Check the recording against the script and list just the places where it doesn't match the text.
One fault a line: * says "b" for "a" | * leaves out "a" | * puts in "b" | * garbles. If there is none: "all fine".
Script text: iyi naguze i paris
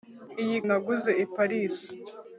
all fine